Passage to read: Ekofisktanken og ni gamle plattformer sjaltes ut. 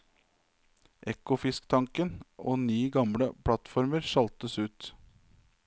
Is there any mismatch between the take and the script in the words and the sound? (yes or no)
no